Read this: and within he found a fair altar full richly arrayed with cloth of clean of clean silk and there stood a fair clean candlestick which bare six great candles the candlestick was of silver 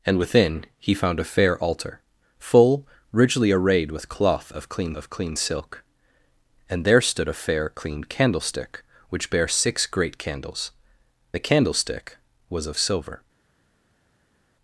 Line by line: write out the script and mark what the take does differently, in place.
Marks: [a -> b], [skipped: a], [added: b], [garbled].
and within he found a fair altar full richly arrayed with cloth of clean of clean silk and there stood a fair clean candlestick which bare six great candles the candlestick was of silver